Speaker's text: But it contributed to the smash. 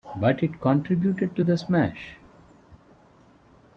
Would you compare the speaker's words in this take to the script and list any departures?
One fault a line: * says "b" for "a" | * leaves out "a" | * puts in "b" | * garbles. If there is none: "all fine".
all fine